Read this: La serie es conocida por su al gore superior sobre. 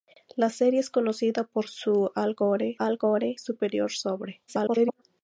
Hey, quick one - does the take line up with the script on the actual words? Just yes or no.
no